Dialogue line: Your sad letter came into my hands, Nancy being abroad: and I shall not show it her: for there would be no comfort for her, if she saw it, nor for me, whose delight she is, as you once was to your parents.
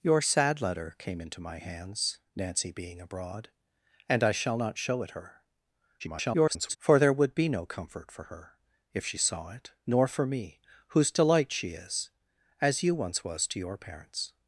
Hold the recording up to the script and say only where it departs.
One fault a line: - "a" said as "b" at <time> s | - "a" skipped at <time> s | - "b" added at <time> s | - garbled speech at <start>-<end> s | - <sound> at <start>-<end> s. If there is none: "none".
- garbled speech at 6.0-6.8 s